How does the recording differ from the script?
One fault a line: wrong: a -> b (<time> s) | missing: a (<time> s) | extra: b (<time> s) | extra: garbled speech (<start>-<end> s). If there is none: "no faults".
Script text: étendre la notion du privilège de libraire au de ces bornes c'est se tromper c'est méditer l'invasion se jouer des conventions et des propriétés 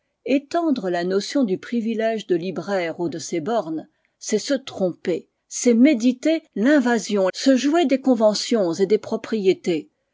no faults